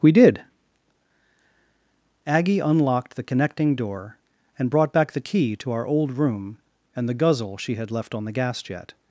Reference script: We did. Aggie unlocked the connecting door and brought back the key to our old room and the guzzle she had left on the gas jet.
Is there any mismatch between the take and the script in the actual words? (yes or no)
no